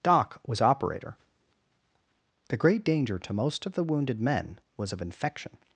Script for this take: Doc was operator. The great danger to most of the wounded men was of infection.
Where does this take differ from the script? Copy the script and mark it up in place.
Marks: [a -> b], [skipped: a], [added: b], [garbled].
Doc was operator. The great danger to most of the wounded men was of infection.